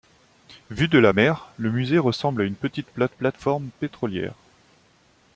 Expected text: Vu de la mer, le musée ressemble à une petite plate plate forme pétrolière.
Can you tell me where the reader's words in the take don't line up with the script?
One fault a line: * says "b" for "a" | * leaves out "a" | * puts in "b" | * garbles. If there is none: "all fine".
all fine